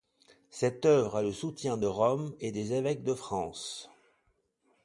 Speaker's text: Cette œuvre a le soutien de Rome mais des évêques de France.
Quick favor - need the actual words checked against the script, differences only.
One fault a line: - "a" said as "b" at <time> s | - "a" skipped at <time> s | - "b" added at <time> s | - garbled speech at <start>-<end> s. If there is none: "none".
- "mais" said as "et" at 2.4 s